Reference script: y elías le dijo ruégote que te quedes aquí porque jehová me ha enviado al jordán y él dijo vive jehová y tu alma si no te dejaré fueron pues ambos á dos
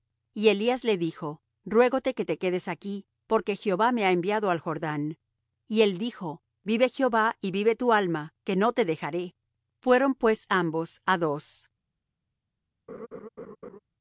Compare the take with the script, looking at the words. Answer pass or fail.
fail